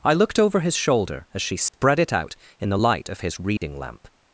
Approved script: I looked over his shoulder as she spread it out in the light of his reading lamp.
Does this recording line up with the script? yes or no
yes